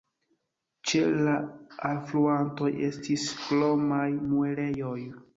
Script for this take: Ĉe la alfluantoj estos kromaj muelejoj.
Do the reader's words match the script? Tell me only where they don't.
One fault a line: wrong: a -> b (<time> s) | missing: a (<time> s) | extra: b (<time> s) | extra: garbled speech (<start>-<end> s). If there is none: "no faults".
wrong: estos -> estis (2.9 s)